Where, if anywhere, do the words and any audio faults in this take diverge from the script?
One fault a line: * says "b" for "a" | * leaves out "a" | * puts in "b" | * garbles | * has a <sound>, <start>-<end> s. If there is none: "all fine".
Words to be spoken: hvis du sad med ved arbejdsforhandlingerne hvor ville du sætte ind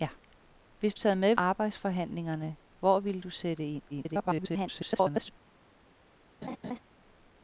* leaves out "du"
* leaves out "ved"
* garbles
* has a laugh, 6.4-6.8 s